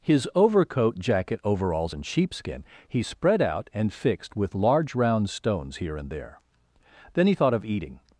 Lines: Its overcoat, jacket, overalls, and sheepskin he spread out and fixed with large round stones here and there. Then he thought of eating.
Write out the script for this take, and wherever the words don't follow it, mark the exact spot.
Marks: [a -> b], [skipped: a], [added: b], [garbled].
[Its -> His] overcoat, jacket, overalls, and sheepskin he spread out and fixed with large round stones here and there. Then he thought of eating.